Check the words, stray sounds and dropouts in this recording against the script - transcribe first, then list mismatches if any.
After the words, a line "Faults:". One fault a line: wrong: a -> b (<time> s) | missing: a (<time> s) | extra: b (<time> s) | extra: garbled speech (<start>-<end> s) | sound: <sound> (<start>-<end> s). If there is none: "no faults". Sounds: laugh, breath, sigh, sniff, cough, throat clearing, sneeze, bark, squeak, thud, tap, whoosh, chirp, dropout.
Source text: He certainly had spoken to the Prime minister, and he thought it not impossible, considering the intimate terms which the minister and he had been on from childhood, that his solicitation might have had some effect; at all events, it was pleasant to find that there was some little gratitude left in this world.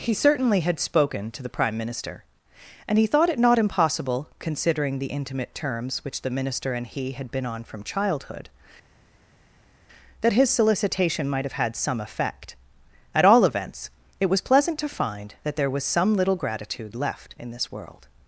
He certainly had spoken to the Prime minister, and he thought it not impossible, considering the intimate terms which the minister and he had been on from childhood, that his solicitation might have had some effect; at all events, it was pleasant to find that there was some little gratitude left in this world.
Faults:
no faults